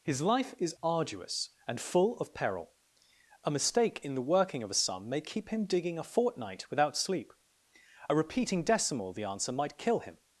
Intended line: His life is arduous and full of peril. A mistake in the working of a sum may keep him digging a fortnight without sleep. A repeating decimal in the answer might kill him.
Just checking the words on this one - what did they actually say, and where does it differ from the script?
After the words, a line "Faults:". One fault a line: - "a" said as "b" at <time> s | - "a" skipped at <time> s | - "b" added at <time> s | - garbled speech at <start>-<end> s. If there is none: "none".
His life is arduous and full of peril. A mistake in the working of a sum may keep him digging a fortnight without sleep. A repeating decimal the answer might kill him.
Faults:
- "in" skipped at 9.1 s